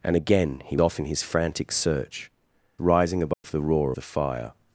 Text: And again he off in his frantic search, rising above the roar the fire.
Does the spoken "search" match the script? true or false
true